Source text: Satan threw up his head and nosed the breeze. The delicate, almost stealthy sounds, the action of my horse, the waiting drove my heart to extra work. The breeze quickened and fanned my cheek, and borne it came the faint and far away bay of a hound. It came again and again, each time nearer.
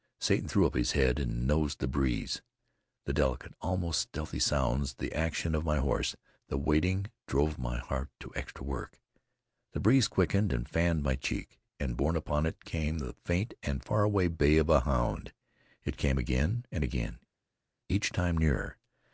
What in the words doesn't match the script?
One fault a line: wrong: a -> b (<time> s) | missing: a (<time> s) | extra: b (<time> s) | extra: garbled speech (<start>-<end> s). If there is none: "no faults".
extra: upon (12.2 s)